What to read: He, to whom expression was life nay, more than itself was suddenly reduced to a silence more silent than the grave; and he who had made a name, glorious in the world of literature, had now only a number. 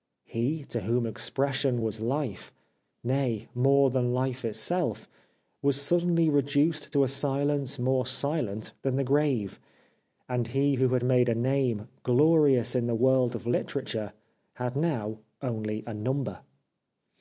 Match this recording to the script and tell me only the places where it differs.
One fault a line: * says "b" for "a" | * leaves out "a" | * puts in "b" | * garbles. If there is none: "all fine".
* puts in "life"